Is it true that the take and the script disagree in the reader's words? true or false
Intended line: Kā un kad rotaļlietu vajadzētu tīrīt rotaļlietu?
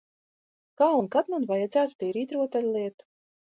true